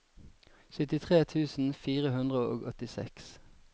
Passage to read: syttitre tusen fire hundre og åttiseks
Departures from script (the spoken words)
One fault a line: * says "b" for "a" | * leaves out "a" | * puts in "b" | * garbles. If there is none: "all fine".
all fine